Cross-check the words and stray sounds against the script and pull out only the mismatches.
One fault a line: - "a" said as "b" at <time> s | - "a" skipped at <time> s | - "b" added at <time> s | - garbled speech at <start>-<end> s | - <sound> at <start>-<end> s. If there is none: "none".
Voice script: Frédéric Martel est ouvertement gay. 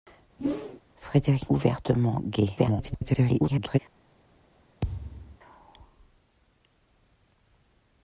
- whoosh at 0.4-0.8 s
- "Martel est" skipped at 1.5 s
- garbled speech at 2.6-3.8 s
- thud at 4.8-5.4 s